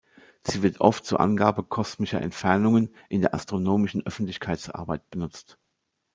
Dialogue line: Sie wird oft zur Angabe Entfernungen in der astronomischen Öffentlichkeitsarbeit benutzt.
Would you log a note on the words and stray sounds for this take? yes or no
yes